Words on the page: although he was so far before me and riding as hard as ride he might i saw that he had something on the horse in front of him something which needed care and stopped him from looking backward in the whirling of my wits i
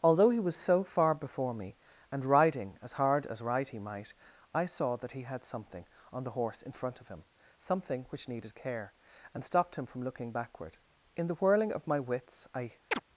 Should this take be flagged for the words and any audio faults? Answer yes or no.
yes